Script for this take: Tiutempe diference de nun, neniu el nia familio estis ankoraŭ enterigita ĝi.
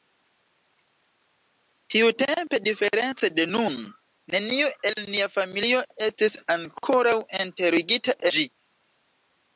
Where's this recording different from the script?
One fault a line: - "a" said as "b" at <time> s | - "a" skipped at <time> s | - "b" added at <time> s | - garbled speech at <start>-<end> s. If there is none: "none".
none